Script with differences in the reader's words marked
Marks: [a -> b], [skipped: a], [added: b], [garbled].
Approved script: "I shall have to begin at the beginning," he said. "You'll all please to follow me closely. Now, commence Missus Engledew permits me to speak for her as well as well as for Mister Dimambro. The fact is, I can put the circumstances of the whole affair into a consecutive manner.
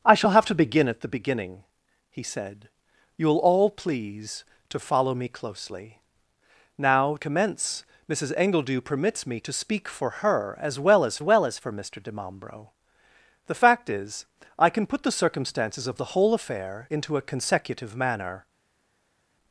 "I shall have to begin at the beginning," he said. "You'll all please to follow me closely. Now, commence Missus Engledew permits me to speak for her as well as well as for Mister Dimambro. The fact is, I can put the circumstances of the whole affair into a consecutive manner.